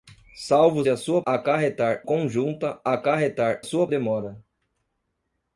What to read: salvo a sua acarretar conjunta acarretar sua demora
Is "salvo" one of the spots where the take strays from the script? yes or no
no